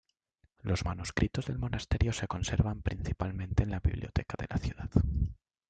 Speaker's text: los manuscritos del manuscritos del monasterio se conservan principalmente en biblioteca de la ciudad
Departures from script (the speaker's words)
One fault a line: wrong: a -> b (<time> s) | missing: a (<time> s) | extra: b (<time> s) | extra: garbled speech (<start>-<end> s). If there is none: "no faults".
missing: manuscritos del (1.6 s)
extra: la (3.7 s)